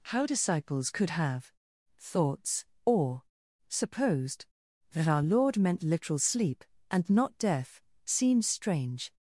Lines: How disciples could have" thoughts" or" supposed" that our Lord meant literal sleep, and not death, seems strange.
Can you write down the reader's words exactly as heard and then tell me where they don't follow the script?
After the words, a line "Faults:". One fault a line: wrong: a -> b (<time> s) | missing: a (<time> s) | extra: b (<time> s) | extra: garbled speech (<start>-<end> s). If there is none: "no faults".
How disciples could have" thoughts" or" supposed" that our Lord meant literal sleep, and not death, seems strange.
Faults:
no faults